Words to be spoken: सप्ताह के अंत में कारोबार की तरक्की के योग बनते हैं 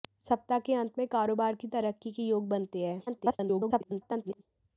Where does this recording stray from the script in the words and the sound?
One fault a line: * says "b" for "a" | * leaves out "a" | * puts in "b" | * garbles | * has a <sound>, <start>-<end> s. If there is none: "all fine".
* garbles